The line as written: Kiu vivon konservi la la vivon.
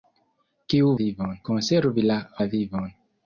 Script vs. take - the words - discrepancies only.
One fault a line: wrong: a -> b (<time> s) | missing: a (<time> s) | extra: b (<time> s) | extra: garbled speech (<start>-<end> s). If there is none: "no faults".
no faults